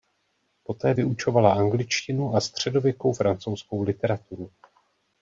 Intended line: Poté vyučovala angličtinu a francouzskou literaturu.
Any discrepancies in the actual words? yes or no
yes